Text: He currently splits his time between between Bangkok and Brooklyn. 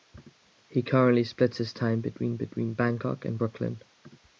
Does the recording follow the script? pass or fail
pass